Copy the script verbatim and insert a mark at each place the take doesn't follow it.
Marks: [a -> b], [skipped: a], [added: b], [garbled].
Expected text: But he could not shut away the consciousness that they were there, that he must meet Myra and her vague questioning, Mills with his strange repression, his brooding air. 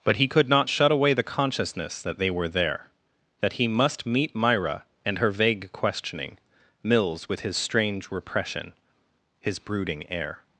But he could not shut away the consciousness that they were there, that he must meet Myra and her vague questioning, Mills with his strange repression, his brooding air.